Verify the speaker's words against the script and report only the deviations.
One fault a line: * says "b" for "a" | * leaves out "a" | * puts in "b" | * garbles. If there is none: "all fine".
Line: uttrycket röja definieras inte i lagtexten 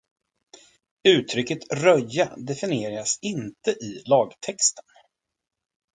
all fine